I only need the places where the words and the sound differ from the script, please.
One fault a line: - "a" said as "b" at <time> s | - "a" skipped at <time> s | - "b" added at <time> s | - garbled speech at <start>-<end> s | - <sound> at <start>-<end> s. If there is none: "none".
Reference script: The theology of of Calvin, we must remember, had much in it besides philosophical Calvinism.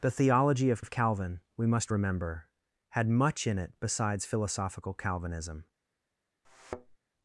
- thud at 6.4-7.0 s